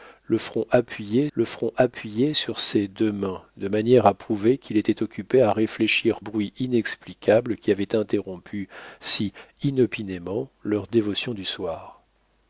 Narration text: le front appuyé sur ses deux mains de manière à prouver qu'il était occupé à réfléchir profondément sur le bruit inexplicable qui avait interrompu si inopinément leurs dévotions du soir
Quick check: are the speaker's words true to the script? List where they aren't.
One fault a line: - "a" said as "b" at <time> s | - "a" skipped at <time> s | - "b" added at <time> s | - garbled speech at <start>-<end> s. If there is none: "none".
- "le front appuyé" added at 1.3 s
- "profondément sur le" skipped at 6.2 s